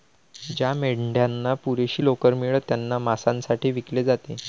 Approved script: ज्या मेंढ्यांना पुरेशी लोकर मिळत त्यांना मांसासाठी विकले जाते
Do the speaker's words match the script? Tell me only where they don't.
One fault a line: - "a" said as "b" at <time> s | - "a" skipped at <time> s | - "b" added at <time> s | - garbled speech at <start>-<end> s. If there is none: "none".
none